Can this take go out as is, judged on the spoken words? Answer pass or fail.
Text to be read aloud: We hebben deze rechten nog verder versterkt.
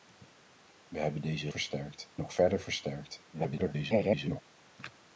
fail